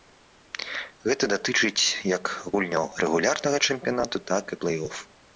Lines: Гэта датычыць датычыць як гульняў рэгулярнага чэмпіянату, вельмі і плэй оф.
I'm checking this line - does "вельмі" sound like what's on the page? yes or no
no